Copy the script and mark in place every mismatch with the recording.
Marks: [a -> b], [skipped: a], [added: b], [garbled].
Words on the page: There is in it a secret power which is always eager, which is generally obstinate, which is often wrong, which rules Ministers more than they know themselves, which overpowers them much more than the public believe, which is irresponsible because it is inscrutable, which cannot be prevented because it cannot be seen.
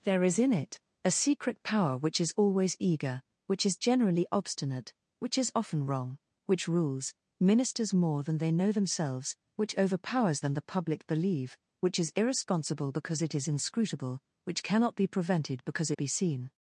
There is in it a secret power which is always eager, which is generally obstinate, which is often wrong, which rules Ministers more than they know themselves, which overpowers [skipped: them much more] than the public believe, which is irresponsible because it is inscrutable, which cannot be prevented because [skipped: it cannot] be seen.